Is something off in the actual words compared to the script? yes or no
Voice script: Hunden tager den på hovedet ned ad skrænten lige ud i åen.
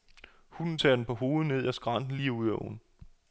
no